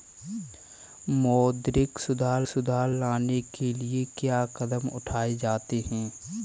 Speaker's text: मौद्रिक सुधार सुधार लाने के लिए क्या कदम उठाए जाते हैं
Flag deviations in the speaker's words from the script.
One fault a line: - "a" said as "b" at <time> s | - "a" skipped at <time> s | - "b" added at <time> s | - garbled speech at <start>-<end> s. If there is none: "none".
none